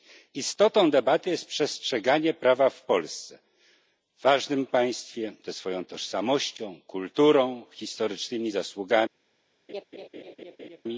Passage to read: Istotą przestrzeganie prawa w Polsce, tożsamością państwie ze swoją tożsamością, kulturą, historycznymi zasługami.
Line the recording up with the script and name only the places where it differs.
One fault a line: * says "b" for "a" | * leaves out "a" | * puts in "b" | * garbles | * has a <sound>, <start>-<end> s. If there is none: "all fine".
* puts in "debaty jest"
* says "ważnym" for "tożsamością"
* has a laugh, 9.7-10.8 s